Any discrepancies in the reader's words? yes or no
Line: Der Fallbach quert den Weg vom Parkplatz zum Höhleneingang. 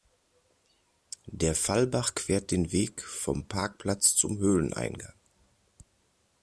no